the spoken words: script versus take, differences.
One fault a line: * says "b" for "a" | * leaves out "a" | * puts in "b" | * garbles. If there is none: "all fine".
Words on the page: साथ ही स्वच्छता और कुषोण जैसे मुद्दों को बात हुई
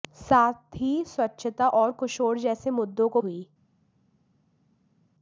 * leaves out "बात"